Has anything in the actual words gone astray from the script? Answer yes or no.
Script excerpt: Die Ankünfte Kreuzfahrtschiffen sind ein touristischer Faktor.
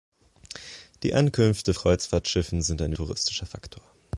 no